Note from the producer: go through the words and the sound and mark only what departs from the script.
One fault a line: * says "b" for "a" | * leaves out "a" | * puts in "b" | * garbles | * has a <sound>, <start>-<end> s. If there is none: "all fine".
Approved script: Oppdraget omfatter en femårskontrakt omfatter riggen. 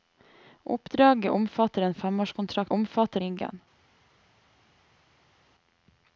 all fine